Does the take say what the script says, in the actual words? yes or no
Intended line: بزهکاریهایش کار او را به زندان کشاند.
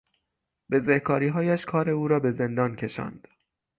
yes